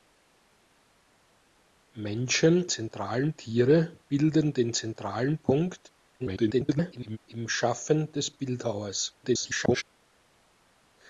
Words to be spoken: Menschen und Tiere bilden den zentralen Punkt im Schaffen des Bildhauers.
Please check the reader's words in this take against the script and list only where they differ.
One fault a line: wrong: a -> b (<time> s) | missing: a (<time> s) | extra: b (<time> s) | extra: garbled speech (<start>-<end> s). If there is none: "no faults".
wrong: und -> zentralen (2.7 s)
extra: garbled speech (6.2-7.2 s)
extra: garbled speech (9.2-9.8 s)